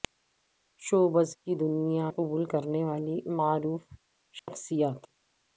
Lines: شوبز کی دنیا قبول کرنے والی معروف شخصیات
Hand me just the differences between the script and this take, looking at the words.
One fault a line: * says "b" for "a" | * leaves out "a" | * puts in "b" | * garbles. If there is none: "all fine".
all fine